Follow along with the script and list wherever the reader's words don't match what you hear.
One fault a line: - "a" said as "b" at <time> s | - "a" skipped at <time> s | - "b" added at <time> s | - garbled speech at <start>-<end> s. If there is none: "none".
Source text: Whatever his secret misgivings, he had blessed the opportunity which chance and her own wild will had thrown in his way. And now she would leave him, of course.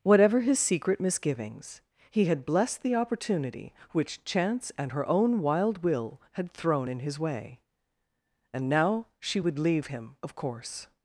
none